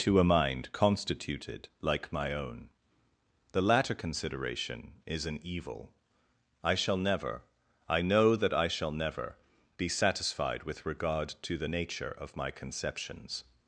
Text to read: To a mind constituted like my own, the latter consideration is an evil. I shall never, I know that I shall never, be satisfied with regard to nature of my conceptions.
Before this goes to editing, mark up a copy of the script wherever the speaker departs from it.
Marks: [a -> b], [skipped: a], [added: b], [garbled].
To a mind constituted like my own, the latter consideration is an evil. I shall never, I know that I shall never, be satisfied with regard to [added: the] nature of my conceptions.